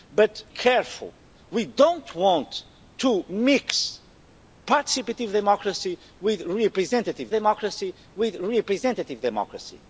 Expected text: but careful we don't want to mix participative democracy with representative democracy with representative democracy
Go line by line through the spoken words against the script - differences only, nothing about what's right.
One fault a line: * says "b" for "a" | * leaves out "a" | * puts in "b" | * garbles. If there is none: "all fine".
all fine